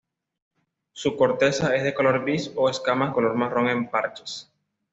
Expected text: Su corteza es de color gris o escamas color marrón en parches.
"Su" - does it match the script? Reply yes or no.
yes